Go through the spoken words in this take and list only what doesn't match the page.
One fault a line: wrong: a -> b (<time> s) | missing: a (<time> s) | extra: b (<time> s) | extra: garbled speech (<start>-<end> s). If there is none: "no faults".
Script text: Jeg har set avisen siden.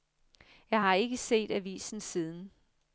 extra: ikke (0.9 s)